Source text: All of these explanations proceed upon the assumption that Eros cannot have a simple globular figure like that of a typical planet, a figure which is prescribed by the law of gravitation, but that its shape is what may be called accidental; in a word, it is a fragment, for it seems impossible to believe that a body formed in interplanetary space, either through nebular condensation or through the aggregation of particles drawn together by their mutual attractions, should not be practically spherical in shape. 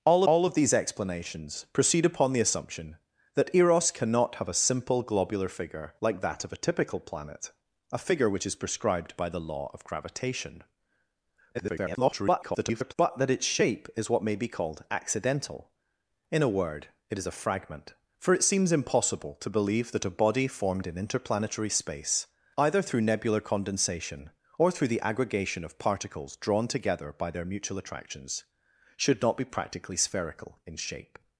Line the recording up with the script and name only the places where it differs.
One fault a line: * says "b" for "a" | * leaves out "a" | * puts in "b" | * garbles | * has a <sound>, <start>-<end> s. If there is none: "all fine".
* puts in "all"
* garbles